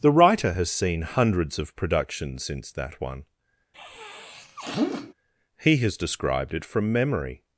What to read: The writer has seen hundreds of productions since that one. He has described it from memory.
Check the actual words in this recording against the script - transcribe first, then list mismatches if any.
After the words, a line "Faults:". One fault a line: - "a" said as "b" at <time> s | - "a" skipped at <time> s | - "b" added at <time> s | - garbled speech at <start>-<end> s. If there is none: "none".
The writer has seen hundreds of productions since that one. He has described it from memory.
Faults:
none